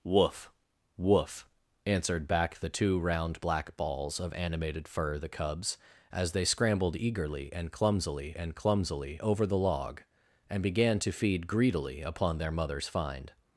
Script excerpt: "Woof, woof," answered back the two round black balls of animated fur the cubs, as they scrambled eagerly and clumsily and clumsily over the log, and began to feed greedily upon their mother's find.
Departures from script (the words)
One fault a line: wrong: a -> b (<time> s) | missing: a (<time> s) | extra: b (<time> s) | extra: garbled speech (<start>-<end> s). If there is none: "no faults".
no faults